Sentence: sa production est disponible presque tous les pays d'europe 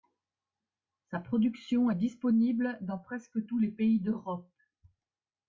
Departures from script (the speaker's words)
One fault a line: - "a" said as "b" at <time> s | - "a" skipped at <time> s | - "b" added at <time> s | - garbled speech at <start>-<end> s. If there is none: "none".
- "dans" added at 2.8 s